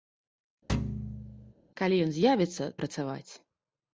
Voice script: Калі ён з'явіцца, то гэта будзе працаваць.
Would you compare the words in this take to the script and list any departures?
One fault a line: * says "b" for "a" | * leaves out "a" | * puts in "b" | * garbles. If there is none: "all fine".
* leaves out "то гэта будзе"